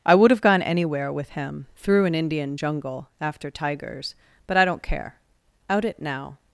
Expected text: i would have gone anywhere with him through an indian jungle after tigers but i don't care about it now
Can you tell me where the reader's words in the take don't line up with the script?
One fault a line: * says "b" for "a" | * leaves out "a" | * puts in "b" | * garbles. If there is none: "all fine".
* says "out" for "about"